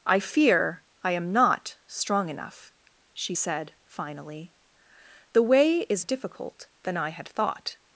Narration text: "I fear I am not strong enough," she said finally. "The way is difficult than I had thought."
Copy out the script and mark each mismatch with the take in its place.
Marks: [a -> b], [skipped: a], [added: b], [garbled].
"I fear I am not strong enough," she said finally. "The way is difficult than I had thought."